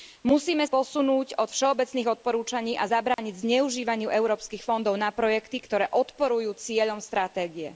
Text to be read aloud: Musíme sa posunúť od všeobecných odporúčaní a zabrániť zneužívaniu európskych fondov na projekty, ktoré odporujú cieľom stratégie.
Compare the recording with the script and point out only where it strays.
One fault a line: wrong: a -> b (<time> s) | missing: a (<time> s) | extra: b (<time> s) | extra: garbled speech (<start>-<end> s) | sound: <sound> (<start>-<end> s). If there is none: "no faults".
missing: sa (0.7 s)
sound: dropout (3.1-3.2 s)